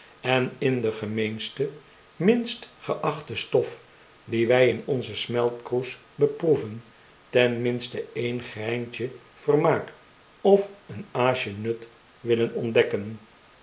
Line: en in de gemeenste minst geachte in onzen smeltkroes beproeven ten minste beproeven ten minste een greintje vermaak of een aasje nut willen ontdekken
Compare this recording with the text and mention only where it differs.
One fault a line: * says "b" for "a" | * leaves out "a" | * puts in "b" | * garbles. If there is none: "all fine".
* puts in "stof die wy"
* leaves out "beproeven ten minste"